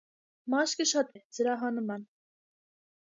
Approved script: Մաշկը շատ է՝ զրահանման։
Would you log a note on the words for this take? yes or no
no